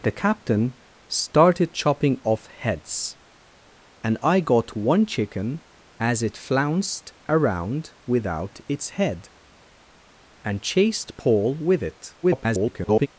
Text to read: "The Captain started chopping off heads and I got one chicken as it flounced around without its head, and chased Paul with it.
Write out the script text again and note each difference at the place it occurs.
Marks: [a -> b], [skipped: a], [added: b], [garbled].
"The Captain started chopping off heads and I got one chicken as it flounced around without its head, and chased Paul with it. [garbled]